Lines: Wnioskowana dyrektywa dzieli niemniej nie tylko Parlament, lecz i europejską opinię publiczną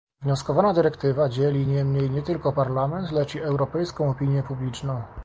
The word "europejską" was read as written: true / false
true